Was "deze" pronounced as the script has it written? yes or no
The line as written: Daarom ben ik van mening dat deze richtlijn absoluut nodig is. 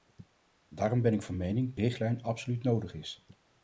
no